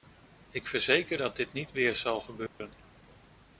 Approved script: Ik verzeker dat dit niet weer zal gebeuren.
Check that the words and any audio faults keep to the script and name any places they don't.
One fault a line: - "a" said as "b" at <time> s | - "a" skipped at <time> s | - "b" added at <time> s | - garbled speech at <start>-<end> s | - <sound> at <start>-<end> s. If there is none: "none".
- dropout at 2.5-2.6 s